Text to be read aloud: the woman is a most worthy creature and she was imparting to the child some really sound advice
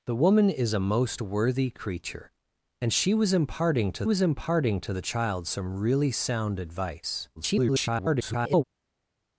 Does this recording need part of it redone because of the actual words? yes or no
yes